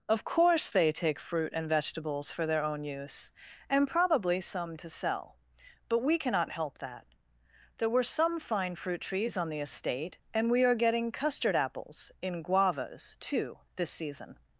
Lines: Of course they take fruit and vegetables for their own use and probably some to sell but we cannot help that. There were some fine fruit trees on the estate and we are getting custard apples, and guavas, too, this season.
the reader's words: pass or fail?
fail